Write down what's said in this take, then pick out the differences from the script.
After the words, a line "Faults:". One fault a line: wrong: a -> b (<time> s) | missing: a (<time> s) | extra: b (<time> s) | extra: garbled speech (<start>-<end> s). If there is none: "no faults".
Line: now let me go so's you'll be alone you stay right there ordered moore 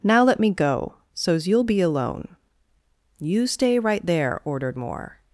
now let me go so's you'll be alone you stay right there ordered moore
Faults:
no faults